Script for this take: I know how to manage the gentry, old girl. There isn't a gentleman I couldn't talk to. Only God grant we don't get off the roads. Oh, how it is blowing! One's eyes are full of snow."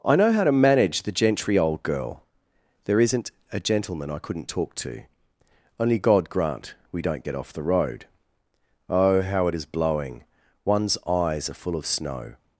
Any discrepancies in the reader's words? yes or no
yes